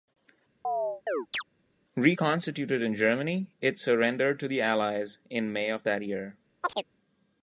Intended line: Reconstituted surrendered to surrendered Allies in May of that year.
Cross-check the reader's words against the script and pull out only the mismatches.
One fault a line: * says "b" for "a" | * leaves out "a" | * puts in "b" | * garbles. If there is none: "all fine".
* puts in "in Germany it"
* says "the" for "surrendered"